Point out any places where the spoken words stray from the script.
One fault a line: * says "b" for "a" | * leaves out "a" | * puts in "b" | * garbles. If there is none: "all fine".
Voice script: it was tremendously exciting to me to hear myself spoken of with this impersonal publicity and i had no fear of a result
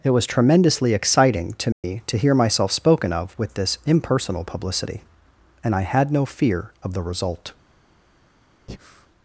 * says "the" for "a"